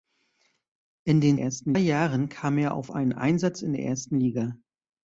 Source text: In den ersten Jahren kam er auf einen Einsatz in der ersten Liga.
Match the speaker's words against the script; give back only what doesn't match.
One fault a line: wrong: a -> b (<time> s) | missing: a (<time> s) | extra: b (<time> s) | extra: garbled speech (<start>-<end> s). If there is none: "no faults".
no faults